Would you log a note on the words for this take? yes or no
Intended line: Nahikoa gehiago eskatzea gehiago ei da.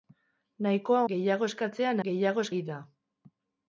no